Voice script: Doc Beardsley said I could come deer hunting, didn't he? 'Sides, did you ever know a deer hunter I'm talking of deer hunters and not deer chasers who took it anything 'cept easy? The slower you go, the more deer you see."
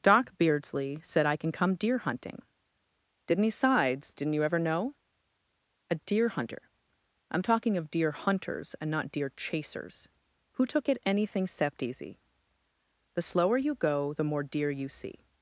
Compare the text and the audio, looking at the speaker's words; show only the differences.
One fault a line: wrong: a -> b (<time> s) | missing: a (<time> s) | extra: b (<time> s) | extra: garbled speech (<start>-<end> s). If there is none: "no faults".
wrong: could -> can (1.4 s)
wrong: did -> didn't (4.1 s)